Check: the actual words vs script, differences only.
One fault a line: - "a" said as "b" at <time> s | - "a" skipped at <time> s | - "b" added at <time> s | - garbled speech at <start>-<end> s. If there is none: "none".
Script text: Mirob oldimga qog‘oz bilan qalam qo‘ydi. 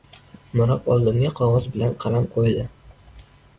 none